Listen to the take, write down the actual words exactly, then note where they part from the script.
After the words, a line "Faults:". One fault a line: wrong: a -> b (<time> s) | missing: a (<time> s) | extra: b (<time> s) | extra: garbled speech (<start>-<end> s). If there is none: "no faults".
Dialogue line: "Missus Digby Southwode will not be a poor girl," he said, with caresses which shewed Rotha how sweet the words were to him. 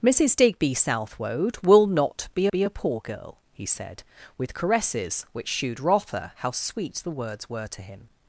"Missus Digby Southwode will not be be a poor girl," he said, with caresses which shewed Rotha how sweet the words were to him.
Faults:
extra: be (2.5 s)